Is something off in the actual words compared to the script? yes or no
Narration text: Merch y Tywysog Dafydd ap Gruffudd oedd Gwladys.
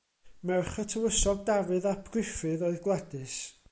no